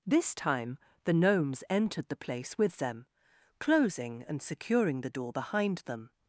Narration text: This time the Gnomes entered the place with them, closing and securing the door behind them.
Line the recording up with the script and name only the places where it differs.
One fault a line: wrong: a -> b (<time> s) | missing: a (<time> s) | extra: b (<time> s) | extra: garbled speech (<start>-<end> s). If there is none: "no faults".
no faults